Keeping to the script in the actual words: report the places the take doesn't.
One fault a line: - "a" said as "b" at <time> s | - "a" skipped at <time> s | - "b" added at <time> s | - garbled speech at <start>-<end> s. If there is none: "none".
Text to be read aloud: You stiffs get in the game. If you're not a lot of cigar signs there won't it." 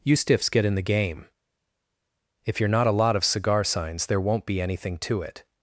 - "be anything to" added at 4.5 s